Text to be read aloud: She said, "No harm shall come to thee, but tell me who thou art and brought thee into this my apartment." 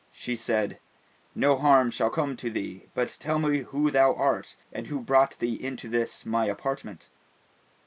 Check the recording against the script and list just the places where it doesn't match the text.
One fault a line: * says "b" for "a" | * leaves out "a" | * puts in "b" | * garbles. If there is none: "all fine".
* puts in "who"